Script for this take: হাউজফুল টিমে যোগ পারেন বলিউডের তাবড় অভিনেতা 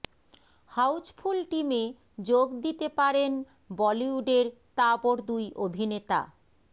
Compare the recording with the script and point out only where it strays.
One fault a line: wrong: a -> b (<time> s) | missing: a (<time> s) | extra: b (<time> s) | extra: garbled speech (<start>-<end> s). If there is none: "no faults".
extra: দিতে (2.6 s)
extra: দুই (5.3 s)